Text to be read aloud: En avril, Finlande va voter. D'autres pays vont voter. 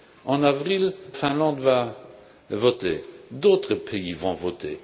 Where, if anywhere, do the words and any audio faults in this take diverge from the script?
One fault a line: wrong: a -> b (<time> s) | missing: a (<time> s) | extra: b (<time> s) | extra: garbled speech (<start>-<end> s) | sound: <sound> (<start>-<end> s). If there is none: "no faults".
no faults